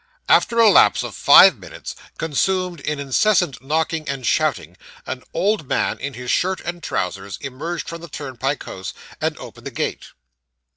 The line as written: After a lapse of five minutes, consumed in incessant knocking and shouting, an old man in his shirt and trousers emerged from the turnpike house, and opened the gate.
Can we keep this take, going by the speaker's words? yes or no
yes